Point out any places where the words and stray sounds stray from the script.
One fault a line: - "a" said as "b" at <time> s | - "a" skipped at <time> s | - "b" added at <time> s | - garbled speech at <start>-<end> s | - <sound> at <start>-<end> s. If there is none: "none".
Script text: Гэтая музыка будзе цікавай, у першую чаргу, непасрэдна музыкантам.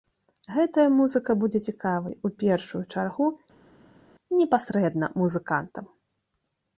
none